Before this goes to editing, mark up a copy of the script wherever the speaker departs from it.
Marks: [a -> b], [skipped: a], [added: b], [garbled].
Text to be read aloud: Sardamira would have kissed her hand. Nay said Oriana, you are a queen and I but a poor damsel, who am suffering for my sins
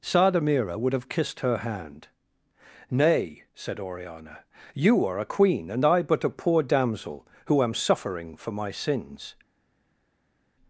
Sardamira would have kissed her hand. Nay said Oriana, you are a queen and I but a poor damsel, who am suffering for my sins